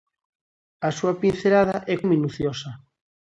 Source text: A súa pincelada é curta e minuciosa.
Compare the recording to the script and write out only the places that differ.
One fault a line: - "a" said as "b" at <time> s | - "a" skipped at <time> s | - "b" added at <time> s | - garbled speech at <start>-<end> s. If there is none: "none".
- "curta" skipped at 1.9 s